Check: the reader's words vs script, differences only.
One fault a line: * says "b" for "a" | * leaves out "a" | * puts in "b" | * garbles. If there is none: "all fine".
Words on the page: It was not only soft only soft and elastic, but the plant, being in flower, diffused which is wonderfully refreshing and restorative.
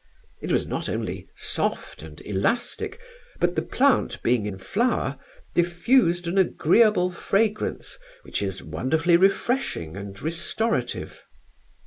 * leaves out "only soft"
* puts in "an agreeable fragrance"